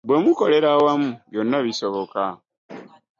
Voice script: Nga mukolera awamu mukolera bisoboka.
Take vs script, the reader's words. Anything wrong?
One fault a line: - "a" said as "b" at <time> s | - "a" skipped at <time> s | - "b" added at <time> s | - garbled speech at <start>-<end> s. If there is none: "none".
- "Nga" said as "Bwe" at 0.1 s
- "mukolera" said as "byonna" at 1.3 s